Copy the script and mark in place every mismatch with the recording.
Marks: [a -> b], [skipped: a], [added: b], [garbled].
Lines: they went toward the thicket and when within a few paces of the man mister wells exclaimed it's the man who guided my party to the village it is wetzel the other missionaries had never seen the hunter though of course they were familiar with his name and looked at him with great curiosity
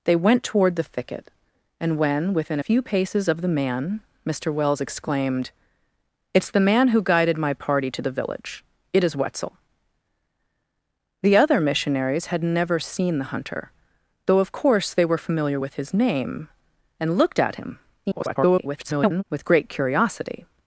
they went toward the thicket and when within [skipped: a] few paces of the man mister wells exclaimed it's the man who guided my party to the village it is wetzel the other missionaries had never seen the hunter though of course they were familiar with his name and looked at him [garbled] with great curiosity